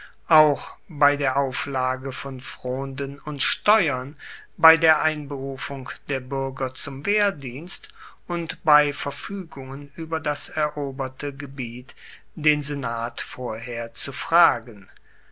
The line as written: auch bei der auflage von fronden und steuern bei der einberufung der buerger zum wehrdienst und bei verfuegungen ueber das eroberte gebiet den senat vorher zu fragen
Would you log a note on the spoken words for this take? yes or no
no